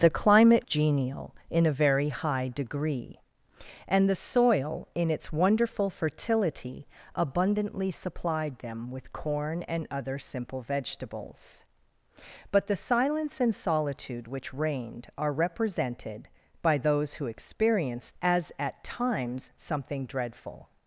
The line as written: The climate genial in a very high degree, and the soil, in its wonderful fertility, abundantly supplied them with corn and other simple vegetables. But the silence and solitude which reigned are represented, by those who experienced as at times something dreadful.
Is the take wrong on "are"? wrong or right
right